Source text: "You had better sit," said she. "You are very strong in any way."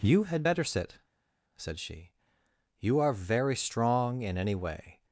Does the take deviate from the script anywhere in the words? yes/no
no